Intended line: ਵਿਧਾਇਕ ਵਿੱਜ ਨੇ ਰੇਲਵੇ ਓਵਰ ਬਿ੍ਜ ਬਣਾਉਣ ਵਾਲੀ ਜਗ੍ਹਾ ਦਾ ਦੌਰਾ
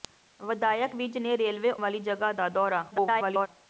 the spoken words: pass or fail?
fail